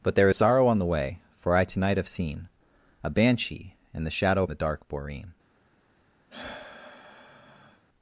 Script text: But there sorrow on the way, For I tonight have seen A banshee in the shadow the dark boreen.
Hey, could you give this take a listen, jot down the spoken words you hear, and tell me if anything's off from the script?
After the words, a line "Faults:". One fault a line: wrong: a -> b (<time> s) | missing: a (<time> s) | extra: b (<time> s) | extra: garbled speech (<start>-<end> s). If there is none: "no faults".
But there sorrow on the way, For I tonight have seen A banshee in the shadow the dark boreen.
Faults:
no faults